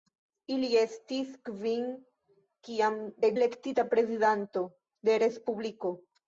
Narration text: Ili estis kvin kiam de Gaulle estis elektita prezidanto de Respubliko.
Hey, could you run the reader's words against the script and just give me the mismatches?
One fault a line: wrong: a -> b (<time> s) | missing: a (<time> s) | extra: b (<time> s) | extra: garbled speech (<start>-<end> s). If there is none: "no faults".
missing: Gaulle estis (3.3 s)